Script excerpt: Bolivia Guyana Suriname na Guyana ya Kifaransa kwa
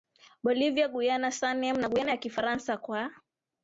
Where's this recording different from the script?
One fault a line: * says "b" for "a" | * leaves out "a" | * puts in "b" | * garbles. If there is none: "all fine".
all fine